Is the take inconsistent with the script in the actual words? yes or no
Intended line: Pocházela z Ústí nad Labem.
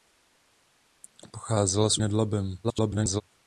yes